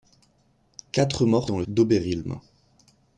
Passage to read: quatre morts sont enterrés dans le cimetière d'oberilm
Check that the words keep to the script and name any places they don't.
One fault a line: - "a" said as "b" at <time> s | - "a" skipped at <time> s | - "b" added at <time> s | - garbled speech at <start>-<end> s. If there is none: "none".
- "sont enterrés" skipped at 1.5 s
- "cimetière" skipped at 1.6 s